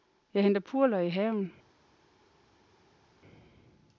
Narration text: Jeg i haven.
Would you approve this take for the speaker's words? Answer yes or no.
no